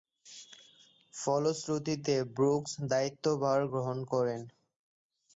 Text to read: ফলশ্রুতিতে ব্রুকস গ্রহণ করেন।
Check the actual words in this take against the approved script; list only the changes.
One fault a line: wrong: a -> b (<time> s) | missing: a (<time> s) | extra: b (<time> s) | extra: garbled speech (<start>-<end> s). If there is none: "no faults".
extra: দায়িত্বভার (2.9 s)